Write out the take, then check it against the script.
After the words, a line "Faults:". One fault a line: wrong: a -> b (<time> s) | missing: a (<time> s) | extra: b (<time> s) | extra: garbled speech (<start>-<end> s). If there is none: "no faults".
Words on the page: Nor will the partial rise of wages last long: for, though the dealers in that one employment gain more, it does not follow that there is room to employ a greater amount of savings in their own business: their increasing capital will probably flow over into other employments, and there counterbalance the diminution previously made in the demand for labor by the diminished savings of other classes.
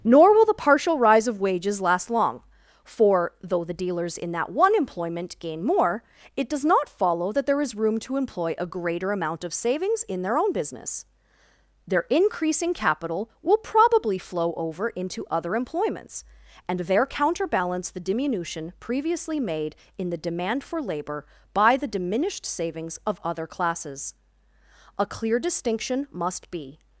Nor will the partial rise of wages last long: for, though the dealers in that one employment gain more, it does not follow that there is room to employ a greater amount of savings in their own business: their increasing capital will probably flow over into other employments, and there counterbalance the diminution previously made in the demand for labor by the diminished savings of other classes. A clear distinction must be
Faults:
extra: A clear distinction must be (25.0 s)